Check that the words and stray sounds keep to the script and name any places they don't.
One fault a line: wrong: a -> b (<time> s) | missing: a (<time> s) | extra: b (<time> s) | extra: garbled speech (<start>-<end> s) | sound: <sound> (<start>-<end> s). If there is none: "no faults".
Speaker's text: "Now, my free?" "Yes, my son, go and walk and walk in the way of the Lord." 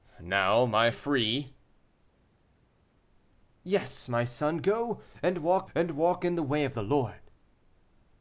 no faults